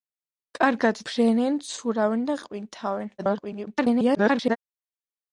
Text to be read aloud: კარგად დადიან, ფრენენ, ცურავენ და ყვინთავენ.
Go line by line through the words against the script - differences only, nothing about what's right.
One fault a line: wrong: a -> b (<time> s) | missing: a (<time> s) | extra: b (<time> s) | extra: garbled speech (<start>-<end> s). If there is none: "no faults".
missing: დადიან (1.0 s)
extra: garbled speech (3.2-4.6 s)